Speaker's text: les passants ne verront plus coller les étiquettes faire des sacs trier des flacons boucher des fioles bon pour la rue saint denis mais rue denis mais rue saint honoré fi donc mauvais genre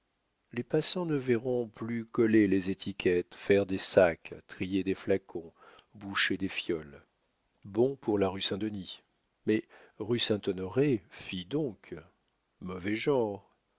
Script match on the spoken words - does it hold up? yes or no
no